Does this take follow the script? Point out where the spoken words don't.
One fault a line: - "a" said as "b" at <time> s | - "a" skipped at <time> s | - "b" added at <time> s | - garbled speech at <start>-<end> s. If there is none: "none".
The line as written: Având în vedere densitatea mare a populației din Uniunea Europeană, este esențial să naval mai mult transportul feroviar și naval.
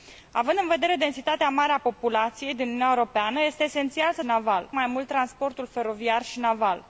none